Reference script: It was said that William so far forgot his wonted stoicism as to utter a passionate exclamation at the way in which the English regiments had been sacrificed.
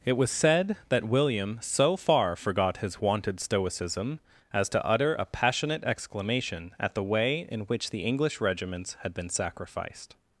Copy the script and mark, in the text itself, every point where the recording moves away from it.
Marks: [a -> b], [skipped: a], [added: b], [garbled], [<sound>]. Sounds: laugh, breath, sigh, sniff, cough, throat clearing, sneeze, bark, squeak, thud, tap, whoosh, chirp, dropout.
It was said that William so far forgot his wonted stoicism as to utter a passionate exclamation at the way in which the English regiments had been sacrificed.